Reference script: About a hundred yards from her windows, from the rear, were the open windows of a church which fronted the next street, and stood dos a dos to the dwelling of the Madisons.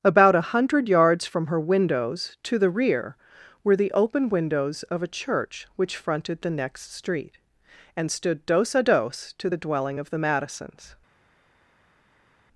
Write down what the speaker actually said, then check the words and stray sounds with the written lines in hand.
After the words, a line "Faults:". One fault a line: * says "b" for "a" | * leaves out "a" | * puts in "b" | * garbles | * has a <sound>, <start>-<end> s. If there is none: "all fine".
About a hundred yards from her windows, to the rear, were the open windows of a church which fronted the next street, and stood dos a dos to the dwelling of the Madisons.
Faults:
* says "to" for "from"